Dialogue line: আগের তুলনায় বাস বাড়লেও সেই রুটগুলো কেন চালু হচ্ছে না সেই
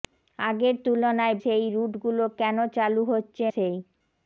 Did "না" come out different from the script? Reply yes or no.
yes